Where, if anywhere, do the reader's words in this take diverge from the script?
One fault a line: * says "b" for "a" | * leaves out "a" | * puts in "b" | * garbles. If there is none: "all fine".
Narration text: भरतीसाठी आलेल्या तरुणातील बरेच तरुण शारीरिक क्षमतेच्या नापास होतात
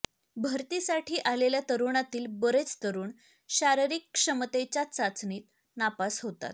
* puts in "चाचणीत"